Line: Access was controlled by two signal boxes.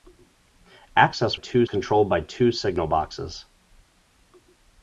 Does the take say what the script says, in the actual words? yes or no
no